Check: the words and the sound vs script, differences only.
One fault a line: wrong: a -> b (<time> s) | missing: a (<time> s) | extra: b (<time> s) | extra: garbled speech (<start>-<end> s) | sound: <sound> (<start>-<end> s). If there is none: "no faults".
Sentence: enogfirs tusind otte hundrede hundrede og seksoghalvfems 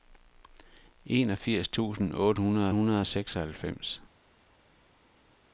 no faults